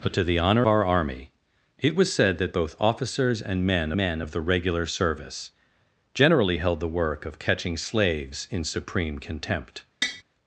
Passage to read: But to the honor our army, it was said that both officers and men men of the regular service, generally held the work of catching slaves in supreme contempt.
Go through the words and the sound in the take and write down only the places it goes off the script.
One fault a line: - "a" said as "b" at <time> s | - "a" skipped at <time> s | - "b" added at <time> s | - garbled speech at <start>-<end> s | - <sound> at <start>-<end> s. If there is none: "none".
- tap at 10.0-10.2 s